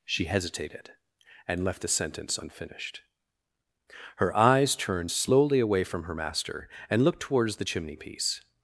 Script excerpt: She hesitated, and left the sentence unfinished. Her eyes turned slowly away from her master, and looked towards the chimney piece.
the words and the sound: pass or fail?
pass